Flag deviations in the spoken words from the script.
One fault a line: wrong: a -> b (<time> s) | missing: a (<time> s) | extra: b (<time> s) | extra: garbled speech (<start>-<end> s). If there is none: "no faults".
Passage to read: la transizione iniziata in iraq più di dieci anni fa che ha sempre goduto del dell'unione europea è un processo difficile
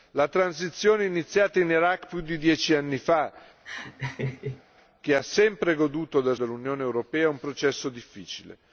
no faults